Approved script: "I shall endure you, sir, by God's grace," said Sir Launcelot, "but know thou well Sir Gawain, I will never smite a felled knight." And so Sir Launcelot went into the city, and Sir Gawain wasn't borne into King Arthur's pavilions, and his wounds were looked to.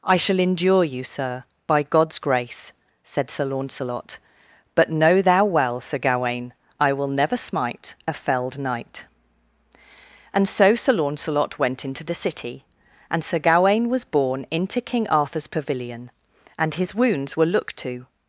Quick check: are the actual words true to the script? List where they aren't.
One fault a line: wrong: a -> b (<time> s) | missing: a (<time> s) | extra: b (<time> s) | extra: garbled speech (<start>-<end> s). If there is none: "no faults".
wrong: wasn't -> was (13.9 s)
wrong: pavilions -> pavilion (15.5 s)